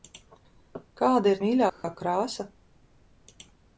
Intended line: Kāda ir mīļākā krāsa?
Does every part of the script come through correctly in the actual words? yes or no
yes